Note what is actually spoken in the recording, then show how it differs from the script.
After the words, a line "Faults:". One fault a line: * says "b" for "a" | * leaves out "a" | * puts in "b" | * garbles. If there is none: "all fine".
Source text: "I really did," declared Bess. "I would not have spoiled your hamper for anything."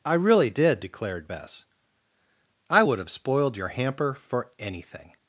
"I really did," declared Bess. "I would have spoiled your hamper for anything."
Faults:
* leaves out "not"